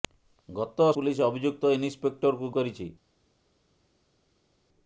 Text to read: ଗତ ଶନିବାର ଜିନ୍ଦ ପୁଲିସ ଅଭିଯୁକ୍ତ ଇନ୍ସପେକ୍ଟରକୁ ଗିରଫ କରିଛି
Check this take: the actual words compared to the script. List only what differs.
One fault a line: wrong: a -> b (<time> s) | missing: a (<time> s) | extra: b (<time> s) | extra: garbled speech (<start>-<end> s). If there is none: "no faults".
missing: ଶନିବାର ଜିନ୍ଦ (0.8 s)
missing: ଗିରଫ (2.5 s)